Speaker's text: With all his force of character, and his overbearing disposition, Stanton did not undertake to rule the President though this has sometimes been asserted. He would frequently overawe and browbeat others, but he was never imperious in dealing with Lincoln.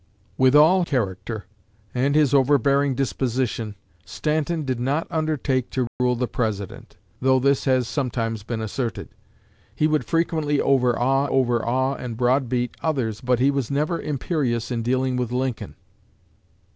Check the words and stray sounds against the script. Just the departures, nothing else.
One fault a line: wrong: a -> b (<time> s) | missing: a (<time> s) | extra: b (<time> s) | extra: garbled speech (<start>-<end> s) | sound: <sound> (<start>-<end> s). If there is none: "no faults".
missing: his force of (0.8 s)
sound: dropout (5.9-6.0 s)
extra: overawe (11.2 s)